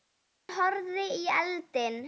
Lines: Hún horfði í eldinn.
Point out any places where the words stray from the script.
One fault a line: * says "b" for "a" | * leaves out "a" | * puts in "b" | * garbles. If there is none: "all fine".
all fine